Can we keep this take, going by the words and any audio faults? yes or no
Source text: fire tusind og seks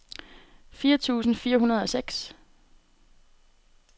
no